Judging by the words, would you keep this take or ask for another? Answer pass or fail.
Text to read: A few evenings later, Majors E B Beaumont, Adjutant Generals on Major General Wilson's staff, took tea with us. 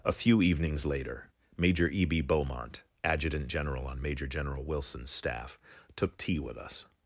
fail